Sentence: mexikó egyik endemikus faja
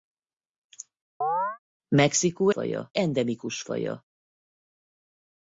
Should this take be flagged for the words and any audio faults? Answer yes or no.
yes